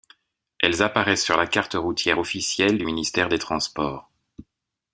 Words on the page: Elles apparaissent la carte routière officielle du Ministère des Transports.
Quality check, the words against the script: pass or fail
fail